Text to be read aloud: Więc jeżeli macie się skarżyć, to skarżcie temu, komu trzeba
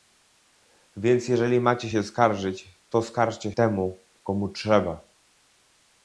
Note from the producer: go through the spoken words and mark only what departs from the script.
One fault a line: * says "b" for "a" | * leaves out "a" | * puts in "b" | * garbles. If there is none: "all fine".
all fine